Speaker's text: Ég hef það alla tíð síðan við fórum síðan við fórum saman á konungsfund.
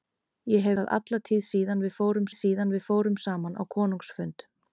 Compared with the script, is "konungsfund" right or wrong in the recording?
right